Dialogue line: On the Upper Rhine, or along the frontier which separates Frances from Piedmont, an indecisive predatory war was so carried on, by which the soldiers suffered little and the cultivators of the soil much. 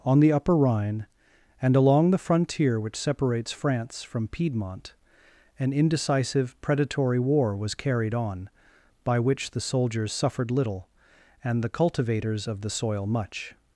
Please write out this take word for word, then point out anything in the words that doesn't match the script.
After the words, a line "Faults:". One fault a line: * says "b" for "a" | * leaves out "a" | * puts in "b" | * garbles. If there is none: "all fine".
On the Upper Rhine, and along the frontier which separates France from Piedmont, an indecisive predatory war was carried on, by which the soldiers suffered little and the cultivators of the soil much.
Faults:
* says "and" for "or"
* says "France" for "Frances"
* leaves out "so"